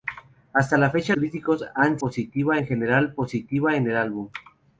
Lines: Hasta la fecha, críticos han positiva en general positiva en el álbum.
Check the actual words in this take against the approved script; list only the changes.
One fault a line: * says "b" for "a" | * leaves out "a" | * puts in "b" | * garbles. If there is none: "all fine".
all fine